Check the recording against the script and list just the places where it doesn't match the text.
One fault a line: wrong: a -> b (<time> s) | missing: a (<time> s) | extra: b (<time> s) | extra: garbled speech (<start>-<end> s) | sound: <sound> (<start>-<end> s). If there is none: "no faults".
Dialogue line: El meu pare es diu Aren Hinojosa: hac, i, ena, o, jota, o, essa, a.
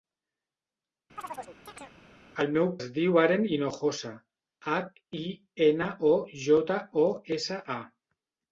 sound: chirp (1.2-2.0 s)
missing: pare (2.7 s)